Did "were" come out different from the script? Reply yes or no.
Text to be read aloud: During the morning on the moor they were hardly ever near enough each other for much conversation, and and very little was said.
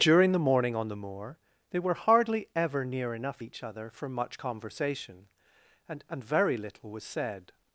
no